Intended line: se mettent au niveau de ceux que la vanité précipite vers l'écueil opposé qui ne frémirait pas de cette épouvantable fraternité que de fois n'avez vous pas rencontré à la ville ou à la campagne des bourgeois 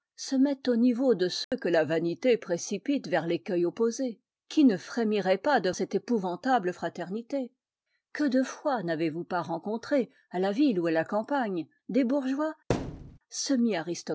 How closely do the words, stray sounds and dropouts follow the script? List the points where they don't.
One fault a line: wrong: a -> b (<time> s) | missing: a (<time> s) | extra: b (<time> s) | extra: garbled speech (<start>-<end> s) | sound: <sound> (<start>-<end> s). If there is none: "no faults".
sound: dropout (1.4-1.5 s)
sound: thud (12.7-13.2 s)